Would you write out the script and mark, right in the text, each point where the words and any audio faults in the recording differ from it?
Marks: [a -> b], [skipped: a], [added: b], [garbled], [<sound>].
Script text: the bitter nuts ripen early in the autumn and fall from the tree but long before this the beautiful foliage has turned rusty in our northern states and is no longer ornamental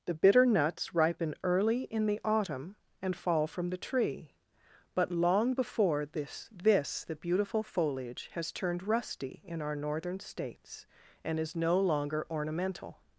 the bitter nuts ripen early in the autumn and fall from the tree but long before this [added: this] the beautiful foliage has turned rusty in our northern states and is no longer ornamental